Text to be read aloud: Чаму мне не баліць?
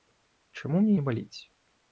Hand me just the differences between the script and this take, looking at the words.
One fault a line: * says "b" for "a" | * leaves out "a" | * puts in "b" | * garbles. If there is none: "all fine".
all fine